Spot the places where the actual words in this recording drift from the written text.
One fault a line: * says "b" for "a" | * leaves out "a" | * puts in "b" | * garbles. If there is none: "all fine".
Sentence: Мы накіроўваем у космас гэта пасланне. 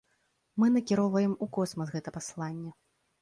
all fine